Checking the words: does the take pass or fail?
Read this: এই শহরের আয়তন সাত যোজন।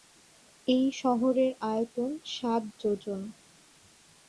pass